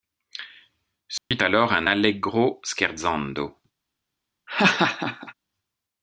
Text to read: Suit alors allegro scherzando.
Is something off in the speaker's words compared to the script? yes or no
yes